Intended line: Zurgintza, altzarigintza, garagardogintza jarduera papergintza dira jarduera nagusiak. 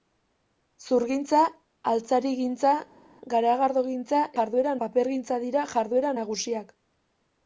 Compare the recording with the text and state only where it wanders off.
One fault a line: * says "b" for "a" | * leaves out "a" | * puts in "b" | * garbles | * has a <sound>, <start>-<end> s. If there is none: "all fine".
all fine